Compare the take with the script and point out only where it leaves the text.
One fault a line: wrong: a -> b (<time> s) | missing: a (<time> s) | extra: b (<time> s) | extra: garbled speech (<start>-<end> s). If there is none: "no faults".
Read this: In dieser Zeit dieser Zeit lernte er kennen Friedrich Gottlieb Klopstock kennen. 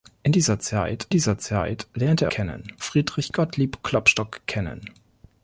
no faults